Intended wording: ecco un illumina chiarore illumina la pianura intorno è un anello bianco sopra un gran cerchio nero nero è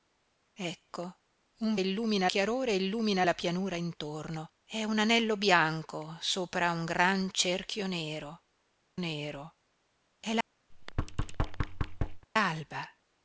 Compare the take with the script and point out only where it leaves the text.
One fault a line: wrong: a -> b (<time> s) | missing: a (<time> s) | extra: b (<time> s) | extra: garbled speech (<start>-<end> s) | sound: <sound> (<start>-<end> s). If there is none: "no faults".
sound: thud (10.7-12.3 s)